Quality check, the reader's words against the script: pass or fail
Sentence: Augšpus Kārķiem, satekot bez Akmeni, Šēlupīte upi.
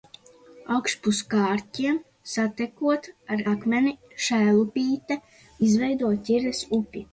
fail